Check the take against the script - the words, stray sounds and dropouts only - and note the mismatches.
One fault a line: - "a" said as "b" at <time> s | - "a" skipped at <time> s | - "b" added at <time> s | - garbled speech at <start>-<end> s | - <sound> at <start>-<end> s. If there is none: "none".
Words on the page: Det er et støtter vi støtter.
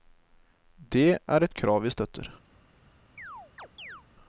- "støtter" said as "krav" at 1.5 s
- chirp at 3.2-4.0 s